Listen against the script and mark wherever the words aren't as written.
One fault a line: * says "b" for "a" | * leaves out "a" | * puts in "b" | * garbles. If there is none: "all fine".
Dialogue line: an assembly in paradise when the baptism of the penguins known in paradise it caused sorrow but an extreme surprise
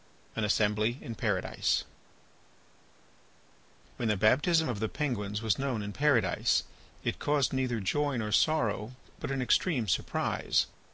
* puts in "was"
* puts in "neither joy nor"